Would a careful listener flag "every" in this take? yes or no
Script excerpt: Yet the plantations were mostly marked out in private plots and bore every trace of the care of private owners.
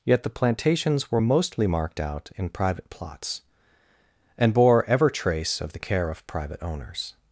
yes